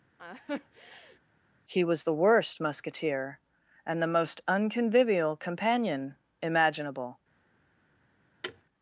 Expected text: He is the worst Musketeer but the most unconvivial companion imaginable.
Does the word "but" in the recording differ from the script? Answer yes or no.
yes